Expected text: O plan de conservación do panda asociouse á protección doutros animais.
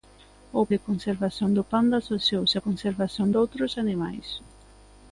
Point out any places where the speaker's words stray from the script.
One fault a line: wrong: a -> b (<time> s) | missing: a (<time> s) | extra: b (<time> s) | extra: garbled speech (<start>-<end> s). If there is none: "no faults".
missing: plan (0.6 s)
wrong: protección -> conservación (2.6 s)